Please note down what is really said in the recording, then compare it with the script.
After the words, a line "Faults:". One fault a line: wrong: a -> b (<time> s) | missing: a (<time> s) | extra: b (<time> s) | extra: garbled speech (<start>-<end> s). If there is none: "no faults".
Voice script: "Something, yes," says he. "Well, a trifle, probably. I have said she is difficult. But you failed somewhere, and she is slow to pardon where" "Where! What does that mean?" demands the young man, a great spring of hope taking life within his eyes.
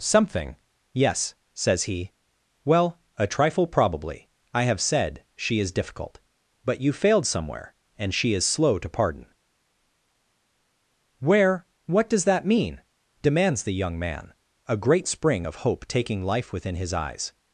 "Something, yes," says he. "Well, a trifle, probably. I have said she is difficult. But you failed somewhere, and she is slow to pardon where! What does that mean?" demands the young man, a great spring of hope taking life within his eyes.
Faults:
missing: Where (11.7 s)